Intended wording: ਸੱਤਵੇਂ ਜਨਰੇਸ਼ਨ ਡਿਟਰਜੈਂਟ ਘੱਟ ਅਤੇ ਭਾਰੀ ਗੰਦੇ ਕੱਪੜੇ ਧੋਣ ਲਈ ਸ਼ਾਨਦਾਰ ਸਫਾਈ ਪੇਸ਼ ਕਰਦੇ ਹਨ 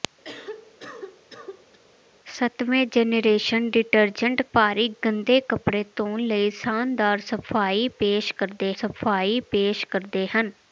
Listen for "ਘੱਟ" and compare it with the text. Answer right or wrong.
wrong